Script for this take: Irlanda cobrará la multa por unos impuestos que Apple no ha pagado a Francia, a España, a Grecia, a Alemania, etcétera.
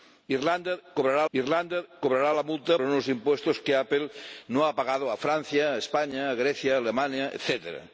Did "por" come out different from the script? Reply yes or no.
yes